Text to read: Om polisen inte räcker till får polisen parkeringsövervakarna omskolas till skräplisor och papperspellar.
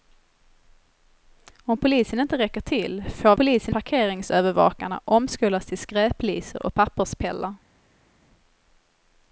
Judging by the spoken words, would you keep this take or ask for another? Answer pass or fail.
pass